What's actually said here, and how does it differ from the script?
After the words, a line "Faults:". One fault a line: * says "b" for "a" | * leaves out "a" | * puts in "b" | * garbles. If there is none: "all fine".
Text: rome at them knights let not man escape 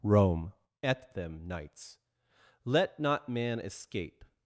rome at them knights let not man escape
Faults:
all fine